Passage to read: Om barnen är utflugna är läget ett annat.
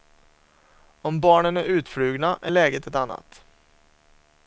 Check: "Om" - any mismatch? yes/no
no